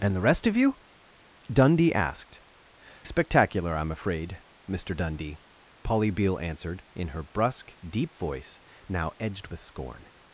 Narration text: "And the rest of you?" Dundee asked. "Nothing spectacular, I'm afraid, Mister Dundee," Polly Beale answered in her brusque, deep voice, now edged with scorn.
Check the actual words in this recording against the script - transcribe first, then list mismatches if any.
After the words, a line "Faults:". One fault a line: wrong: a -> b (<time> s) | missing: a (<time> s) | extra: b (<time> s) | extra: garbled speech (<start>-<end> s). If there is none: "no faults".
"And the rest of you?" Dundee asked. "Spectacular, I'm afraid, Mister Dundee," Polly Beale answered in her brusque, deep voice, now edged with scorn.
Faults:
missing: Nothing (2.4 s)